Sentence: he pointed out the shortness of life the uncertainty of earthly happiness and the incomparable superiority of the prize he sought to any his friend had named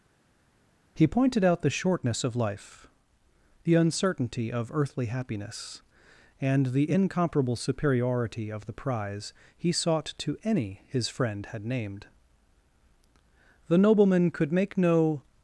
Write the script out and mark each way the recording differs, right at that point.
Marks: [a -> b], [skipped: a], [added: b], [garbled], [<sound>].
he pointed out the shortness of life the uncertainty of earthly happiness and the incomparable superiority of the prize he sought to any his friend had named [added: the nobleman could make no]